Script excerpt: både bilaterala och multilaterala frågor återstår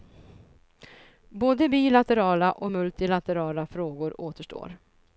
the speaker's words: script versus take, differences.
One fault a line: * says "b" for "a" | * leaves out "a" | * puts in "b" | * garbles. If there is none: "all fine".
all fine